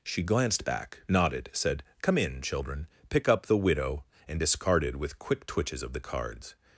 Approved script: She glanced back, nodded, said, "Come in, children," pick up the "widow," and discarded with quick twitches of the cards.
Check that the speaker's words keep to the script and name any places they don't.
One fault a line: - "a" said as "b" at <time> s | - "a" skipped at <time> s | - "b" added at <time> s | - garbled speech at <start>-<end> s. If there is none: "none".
none